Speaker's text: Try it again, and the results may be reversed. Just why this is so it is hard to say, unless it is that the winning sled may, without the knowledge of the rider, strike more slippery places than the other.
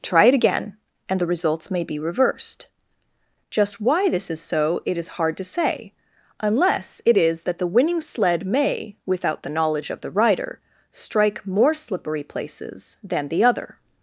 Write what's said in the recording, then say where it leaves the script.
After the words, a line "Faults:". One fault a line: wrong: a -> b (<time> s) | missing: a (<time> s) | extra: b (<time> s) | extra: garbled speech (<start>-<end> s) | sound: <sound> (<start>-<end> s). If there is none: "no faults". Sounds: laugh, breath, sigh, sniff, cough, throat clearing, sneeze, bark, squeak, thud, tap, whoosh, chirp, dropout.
Try it again, and the results may be reversed. Just why this is so it is hard to say, unless it is that the winning sled may, without the knowledge of the rider, strike more slippery places than the other.
Faults:
no faults